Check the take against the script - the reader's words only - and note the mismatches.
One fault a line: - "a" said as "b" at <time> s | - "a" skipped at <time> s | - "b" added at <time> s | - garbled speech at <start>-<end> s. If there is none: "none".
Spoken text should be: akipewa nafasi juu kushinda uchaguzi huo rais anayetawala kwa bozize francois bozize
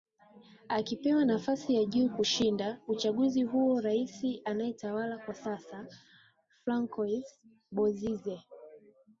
- "ya" added at 1.8 s
- "bozize" said as "sasa" at 5.3 s